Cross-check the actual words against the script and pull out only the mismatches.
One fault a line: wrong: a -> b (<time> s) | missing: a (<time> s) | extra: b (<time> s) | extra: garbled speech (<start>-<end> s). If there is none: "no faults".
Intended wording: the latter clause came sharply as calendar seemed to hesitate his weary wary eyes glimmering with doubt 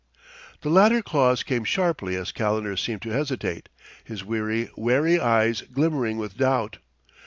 no faults